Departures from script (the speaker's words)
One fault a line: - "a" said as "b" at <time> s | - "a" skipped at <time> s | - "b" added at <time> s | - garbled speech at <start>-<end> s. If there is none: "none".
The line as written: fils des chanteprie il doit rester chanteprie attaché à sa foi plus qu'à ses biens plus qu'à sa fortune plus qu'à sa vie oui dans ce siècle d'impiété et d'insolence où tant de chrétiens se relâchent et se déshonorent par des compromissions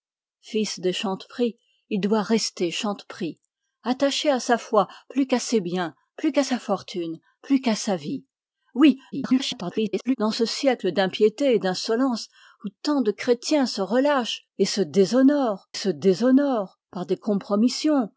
- garbled speech at 9.1-10.2 s
- "se déshonorent" added at 15.7 s